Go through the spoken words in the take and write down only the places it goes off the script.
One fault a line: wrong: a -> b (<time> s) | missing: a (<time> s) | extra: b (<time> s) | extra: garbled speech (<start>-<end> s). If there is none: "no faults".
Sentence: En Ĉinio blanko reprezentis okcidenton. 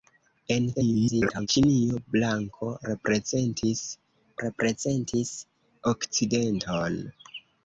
extra: garbled speech (0.7-1.5 s)
extra: reprezentis (4.5 s)